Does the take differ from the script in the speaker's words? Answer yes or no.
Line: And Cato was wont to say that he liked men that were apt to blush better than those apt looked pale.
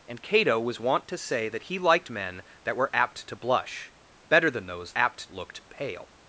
no